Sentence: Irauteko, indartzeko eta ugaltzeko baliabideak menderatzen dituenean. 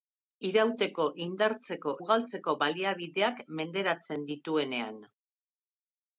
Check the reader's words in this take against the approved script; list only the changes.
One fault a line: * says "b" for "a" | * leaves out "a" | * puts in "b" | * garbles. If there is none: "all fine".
* leaves out "eta"